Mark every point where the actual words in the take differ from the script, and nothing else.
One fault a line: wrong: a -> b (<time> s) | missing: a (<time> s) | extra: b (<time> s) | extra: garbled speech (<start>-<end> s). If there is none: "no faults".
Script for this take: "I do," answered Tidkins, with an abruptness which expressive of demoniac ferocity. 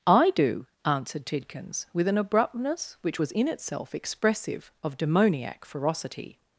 extra: was in itself (3.2 s)